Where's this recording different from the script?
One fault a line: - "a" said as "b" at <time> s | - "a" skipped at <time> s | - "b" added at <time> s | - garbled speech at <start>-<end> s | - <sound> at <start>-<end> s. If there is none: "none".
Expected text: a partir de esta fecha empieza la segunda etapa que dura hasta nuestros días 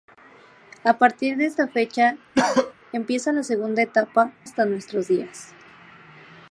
- cough at 2.4-2.7 s
- "que dura" skipped at 4.3 s